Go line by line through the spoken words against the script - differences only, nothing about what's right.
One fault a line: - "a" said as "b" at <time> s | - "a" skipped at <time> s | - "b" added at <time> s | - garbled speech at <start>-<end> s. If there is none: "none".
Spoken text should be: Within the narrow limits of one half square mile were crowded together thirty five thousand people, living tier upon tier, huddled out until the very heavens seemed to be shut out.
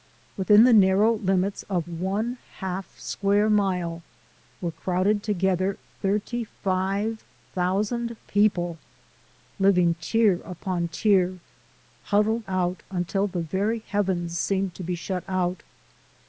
none